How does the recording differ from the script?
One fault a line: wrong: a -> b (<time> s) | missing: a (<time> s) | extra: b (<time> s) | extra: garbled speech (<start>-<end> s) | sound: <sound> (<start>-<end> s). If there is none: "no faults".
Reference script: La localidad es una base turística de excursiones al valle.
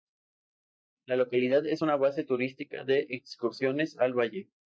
no faults